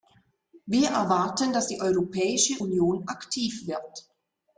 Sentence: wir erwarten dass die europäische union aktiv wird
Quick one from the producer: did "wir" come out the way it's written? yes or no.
yes